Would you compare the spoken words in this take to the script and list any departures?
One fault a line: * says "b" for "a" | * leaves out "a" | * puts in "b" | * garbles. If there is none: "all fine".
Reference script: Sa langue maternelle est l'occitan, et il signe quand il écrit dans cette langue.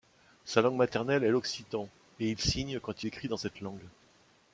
* leaves out "il"